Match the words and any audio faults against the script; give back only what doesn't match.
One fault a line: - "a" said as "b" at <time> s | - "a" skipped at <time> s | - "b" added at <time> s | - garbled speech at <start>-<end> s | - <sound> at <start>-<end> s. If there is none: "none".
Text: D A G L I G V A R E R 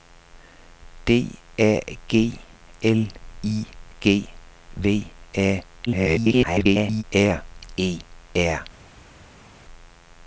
- garbled speech at 5.9-7.0 s